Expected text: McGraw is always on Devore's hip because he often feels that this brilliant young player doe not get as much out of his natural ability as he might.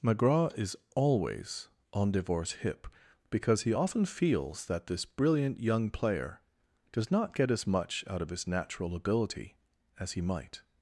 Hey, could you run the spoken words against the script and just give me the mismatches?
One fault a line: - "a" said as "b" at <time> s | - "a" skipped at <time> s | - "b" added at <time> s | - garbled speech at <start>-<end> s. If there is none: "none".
- "doe" said as "does" at 6.9 s